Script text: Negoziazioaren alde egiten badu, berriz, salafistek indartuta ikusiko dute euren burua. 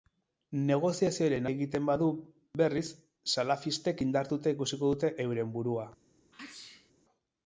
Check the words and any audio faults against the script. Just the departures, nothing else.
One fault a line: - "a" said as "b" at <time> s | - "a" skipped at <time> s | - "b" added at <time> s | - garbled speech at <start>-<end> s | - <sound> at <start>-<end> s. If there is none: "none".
- "alde" skipped at 1.5 s
- sneeze at 6.3-6.9 s